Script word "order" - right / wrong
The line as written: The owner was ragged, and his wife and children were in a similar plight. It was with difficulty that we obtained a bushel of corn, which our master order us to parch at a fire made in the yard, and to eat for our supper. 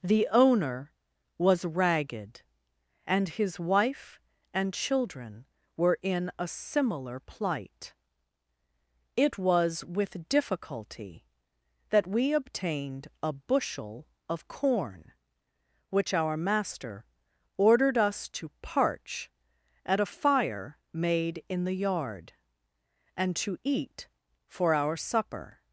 wrong